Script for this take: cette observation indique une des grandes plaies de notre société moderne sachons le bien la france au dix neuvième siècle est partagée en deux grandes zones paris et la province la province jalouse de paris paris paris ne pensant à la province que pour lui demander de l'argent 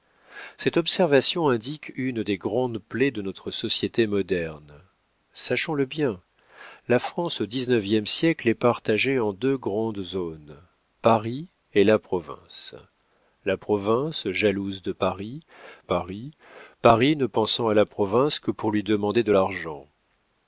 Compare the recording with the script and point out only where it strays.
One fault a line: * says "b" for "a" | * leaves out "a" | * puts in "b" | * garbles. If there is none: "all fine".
all fine